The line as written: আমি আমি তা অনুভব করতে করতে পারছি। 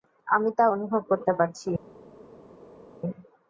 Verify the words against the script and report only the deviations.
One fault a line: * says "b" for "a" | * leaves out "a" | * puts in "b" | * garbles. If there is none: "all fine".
* leaves out "আমি"
* leaves out "করতে"